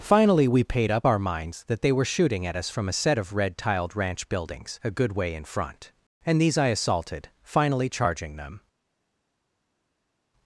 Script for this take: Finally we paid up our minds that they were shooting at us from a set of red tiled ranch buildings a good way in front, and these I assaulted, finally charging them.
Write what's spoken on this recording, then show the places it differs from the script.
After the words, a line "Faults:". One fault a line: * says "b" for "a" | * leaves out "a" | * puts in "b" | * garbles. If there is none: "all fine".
Finally we paid up our minds that they were shooting at us from a set of red tiled ranch buildings a good way in front, and these I assaulted, finally charging them.
Faults:
all fine